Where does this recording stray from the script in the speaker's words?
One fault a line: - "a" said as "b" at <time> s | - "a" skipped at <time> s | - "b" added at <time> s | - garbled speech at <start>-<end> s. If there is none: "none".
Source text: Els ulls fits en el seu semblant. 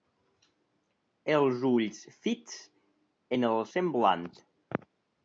- "seu" skipped at 3.6 s